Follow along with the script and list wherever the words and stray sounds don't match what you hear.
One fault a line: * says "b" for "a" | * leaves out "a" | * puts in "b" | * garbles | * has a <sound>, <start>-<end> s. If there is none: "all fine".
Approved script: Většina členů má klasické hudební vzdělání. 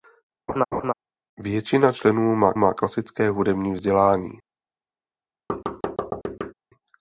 * has a laugh, 0.5-0.9 s
* puts in "má"
* has a thud, 5.5-6.5 s